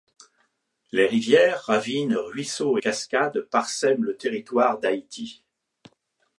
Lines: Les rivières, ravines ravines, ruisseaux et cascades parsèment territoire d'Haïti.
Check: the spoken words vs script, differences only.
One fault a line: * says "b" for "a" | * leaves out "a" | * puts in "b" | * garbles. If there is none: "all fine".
* leaves out "ravines"
* puts in "le"